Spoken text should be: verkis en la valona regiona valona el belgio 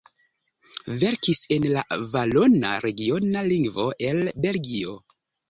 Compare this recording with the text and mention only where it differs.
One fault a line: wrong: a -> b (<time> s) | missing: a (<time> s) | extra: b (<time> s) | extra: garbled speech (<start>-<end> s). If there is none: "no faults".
wrong: valona -> lingvo (3.5 s)